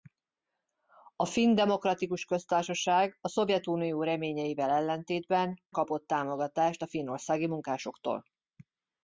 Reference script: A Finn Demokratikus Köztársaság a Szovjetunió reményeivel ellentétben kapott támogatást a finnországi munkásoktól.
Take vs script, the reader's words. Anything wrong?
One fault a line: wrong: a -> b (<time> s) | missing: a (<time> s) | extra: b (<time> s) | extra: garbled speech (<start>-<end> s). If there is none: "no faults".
no faults